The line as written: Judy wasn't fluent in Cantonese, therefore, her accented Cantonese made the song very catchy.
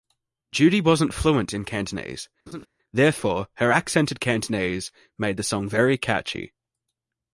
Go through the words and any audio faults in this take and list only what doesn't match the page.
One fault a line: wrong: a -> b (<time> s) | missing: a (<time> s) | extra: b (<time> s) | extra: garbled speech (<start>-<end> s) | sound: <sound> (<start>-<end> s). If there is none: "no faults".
sound: laugh (2.5-2.7 s)